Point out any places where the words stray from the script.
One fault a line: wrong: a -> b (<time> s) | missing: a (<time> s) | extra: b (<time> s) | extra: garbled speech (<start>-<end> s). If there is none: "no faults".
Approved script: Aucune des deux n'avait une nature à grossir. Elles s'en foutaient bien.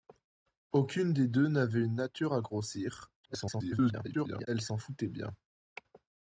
extra: garbled speech (3.2-4.5 s)